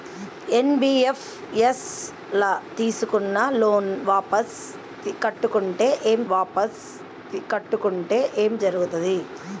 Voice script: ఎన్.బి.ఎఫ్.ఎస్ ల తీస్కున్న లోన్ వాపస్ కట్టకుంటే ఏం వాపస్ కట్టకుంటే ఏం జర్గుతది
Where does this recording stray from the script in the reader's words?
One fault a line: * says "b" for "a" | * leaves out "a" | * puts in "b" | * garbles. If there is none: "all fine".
all fine